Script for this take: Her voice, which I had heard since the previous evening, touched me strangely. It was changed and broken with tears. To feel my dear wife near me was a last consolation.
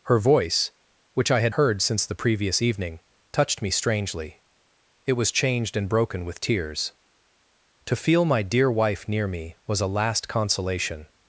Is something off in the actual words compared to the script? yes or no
no